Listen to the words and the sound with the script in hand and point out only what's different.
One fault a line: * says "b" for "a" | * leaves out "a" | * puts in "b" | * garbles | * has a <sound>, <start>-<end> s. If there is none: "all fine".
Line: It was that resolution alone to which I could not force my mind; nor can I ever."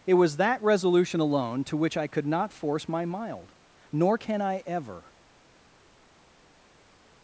* says "mild" for "mind"